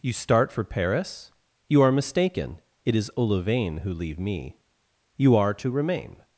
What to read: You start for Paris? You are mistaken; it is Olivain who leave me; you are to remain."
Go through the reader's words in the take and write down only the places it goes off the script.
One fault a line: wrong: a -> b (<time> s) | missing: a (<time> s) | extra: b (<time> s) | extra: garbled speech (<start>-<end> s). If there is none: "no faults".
no faults